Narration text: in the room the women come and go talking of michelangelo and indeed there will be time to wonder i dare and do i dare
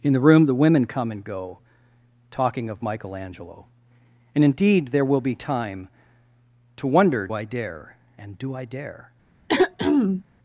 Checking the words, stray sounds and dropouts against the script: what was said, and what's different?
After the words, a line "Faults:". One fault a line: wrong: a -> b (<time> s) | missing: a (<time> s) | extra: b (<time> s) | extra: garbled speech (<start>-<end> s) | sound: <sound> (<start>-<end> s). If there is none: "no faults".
in the room the women come and go talking of michelangelo and indeed there will be time to wonder i dare and do i dare
Faults:
sound: throat clearing (9.5-10.2 s)